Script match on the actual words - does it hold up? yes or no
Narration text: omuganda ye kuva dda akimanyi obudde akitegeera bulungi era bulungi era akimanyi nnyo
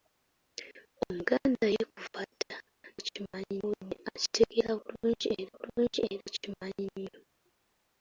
yes